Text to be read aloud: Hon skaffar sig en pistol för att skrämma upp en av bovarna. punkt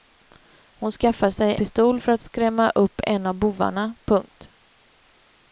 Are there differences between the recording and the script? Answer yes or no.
yes